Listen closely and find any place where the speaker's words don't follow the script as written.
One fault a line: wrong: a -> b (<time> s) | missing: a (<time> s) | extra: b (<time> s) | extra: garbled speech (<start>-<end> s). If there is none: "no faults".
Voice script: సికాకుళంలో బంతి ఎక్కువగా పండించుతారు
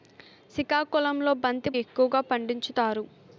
no faults